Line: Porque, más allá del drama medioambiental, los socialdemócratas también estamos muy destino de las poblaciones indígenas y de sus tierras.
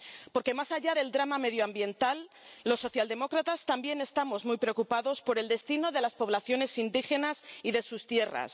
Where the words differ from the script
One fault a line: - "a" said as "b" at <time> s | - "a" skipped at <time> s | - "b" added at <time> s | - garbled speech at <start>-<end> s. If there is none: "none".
- "preocupados por el" added at 4.6 s